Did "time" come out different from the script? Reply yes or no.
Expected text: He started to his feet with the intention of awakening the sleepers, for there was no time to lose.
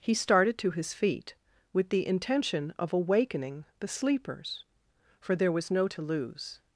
yes